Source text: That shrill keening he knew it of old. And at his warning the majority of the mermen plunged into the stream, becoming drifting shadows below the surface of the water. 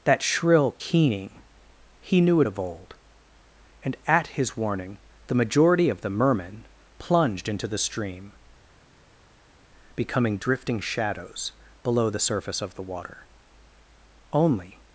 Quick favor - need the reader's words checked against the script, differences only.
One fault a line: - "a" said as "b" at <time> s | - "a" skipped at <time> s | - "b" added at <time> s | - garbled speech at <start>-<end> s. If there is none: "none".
- "Only" added at 14.3 s